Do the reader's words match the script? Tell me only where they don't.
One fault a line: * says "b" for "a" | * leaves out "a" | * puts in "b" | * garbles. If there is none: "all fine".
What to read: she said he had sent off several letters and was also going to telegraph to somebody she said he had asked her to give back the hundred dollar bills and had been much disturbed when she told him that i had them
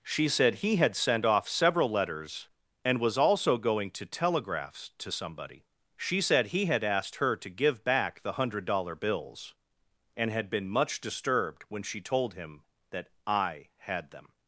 * says "telegraphs" for "telegraph"